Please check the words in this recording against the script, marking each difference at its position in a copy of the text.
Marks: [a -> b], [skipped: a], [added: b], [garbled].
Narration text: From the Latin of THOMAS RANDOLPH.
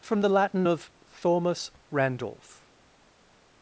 From the Latin of THOMAS RANDOLPH.